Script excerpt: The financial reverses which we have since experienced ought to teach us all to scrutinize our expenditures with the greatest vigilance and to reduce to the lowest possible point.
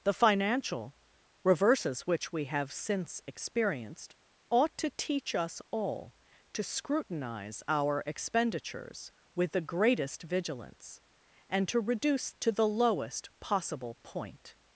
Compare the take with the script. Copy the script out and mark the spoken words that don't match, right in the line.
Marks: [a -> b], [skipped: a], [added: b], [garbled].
The financial reverses which we have since experienced ought to teach us all to scrutinize our expenditures with the greatest vigilance and to reduce to the lowest possible point.